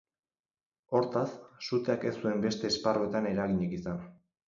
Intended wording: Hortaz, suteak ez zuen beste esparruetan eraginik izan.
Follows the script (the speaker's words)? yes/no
yes